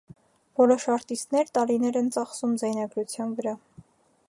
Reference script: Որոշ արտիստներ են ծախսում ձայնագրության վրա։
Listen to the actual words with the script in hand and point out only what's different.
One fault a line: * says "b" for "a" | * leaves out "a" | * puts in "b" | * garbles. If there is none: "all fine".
* puts in "տարիներ"